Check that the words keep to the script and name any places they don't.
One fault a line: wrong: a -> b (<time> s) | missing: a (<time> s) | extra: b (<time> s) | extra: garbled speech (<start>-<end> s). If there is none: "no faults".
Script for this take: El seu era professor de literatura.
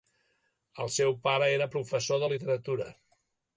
extra: pare (1.3 s)